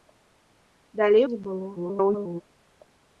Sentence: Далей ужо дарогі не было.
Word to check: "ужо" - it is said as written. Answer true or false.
false